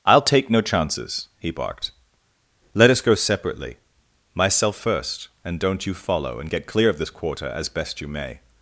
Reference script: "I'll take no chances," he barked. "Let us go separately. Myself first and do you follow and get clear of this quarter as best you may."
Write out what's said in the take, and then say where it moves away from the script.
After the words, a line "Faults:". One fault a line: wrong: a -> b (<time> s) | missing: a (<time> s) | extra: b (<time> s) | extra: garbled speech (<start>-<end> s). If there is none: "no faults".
"I'll take no chances," he barked. "Let us go separately. Myself first and don't you follow and get clear of this quarter as best you may."
Faults:
wrong: do -> don't (5.6 s)